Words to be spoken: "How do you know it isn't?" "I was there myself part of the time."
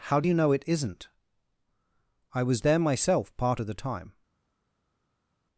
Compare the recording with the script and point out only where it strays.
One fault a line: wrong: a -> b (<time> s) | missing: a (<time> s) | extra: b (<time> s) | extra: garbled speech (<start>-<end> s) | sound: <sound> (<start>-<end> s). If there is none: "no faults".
no faults